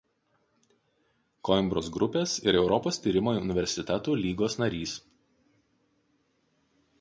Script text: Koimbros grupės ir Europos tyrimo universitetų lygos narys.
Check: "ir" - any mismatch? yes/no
no